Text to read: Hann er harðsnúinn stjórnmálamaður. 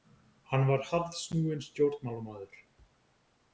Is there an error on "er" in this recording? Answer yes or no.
yes